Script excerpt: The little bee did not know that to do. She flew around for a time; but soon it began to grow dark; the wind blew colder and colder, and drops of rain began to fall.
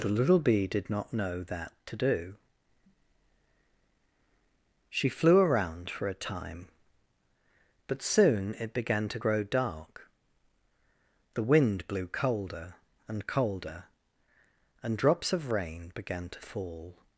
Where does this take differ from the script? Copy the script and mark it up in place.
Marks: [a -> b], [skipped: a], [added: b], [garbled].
The little bee did not know that to do. She flew around for a time; but soon it began to grow dark; the wind blew colder and colder, and drops of rain began to fall.